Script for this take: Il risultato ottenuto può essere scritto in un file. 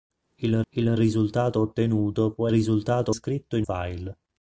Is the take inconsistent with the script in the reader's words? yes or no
yes